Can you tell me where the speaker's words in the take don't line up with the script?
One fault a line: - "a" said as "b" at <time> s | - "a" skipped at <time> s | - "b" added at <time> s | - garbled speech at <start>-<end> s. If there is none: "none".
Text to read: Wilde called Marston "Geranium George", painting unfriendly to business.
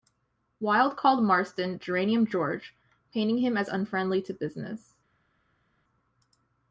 - "him as" added at 3.4 s